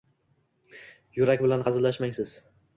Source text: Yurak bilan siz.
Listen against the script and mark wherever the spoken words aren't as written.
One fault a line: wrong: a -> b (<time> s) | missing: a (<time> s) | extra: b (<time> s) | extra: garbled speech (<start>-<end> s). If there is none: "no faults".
extra: hazillashmang (1.7 s)